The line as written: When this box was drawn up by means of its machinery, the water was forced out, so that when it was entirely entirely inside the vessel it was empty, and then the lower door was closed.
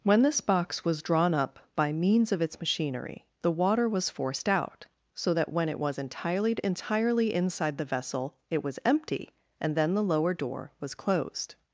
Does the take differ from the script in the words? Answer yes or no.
no